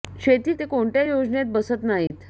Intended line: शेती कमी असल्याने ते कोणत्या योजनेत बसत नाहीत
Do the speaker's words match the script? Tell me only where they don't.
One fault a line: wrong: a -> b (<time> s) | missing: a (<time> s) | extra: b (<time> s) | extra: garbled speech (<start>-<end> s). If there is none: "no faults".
missing: कमी असल्याने (0.5 s)